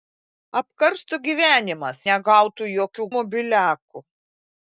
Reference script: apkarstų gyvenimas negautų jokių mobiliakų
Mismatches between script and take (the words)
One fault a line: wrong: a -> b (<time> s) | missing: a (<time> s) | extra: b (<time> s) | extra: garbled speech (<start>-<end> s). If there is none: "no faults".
no faults